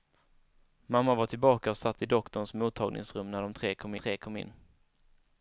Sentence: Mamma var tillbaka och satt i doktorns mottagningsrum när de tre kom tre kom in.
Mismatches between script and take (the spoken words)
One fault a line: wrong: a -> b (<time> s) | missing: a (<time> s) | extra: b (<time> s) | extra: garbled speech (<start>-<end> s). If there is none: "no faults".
no faults